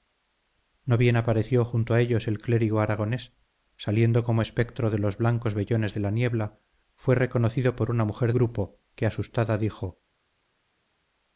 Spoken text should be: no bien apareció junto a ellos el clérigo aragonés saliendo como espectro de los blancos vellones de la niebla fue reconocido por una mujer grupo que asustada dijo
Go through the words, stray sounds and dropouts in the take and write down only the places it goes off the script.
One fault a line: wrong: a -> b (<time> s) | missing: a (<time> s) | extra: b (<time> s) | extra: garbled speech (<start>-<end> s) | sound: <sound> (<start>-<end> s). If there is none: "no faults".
no faults